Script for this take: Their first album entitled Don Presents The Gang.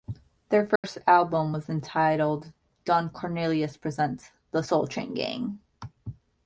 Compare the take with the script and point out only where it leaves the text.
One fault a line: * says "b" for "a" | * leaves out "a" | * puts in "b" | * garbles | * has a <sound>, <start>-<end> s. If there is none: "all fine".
* has a dropout, 0.8-0.8 s
* puts in "was"
* puts in "Cornelius"
* puts in "Soul Train"